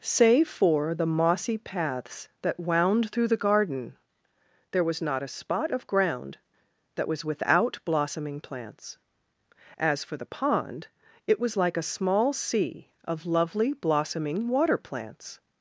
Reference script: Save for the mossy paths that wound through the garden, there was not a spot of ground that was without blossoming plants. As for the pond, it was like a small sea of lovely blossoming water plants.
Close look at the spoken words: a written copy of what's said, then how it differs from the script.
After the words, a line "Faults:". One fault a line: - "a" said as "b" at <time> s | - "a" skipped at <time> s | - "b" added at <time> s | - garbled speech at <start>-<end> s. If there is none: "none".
Save for the mossy paths that wound through the garden, there was not a spot of ground that was without blossoming plants. As for the pond, it was like a small sea of lovely blossoming water plants.
Faults:
none